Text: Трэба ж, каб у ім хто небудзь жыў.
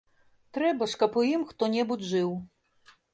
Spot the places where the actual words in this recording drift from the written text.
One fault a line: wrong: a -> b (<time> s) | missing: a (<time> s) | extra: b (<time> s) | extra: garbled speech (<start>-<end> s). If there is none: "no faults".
no faults